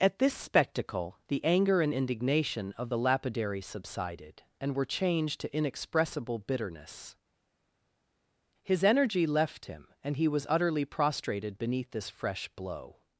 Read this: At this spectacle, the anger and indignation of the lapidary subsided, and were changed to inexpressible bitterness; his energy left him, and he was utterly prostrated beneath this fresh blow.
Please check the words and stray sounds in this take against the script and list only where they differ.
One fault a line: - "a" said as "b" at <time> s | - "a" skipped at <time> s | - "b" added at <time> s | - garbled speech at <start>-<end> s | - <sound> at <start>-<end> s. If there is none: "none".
none